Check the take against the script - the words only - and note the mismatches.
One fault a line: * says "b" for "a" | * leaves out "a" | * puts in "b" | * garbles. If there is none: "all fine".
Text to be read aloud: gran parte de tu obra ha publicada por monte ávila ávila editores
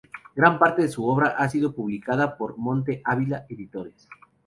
* says "su" for "tu"
* puts in "sido"
* leaves out "ávila"